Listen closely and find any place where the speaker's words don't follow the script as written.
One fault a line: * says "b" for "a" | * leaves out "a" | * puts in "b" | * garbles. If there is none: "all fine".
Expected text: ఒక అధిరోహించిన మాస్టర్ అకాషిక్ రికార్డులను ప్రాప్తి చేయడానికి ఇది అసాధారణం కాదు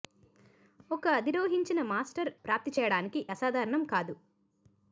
* leaves out "అకాషిక్ రికార్డులను"
* leaves out "ఇది"